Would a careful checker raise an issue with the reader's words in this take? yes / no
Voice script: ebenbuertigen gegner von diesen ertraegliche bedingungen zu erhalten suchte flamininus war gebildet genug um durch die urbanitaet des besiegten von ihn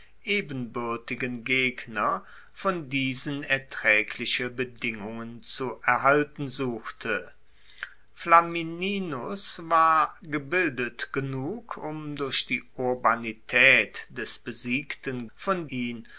no